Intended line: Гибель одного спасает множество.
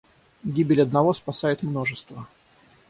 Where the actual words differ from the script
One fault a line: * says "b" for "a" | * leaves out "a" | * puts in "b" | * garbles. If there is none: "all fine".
all fine